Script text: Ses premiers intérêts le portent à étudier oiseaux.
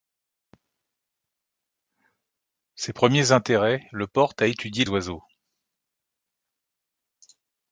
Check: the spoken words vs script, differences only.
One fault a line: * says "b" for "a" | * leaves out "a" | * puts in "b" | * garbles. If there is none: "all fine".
all fine